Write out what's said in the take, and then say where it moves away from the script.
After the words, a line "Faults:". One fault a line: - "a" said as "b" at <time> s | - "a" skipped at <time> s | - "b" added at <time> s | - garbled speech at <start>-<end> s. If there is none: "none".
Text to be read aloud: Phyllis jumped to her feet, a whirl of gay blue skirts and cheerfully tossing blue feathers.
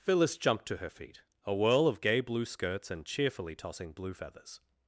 Phyllis jumped to her feet, a whirl of gay blue skirts and cheerfully tossing blue feathers.
Faults:
none